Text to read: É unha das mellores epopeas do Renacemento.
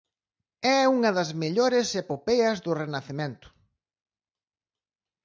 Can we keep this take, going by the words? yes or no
yes